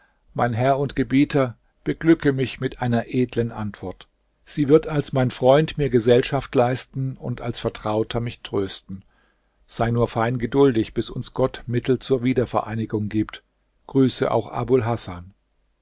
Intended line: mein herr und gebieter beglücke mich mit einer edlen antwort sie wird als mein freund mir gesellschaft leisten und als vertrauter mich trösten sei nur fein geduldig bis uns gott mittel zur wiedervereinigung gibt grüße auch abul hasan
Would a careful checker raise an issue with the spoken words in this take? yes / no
no